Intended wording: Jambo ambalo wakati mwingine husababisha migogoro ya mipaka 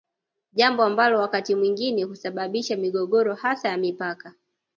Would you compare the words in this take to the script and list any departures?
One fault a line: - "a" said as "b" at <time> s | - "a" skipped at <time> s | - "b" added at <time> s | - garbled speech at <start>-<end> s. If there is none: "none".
- "hasa" added at 3.3 s